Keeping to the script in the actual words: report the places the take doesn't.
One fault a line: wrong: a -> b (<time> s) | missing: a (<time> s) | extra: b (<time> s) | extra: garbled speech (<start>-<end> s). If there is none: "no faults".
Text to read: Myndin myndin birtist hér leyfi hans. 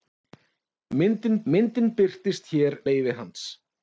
no faults